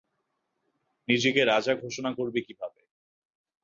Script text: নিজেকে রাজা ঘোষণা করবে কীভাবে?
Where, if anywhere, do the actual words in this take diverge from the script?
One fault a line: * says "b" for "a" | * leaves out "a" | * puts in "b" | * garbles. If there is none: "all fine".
all fine